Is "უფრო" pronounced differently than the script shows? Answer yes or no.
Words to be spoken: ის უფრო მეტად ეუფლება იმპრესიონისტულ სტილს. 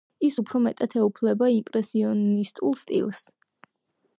no